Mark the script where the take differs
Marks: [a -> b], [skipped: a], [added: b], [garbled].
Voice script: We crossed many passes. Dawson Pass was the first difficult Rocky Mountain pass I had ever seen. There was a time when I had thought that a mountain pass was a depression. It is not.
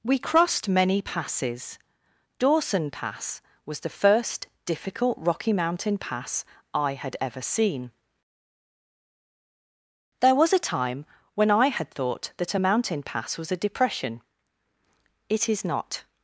We crossed many passes. Dawson Pass was the first difficult Rocky Mountain pass I had ever seen. There was a time when I had thought that a mountain pass was a depression. It is not.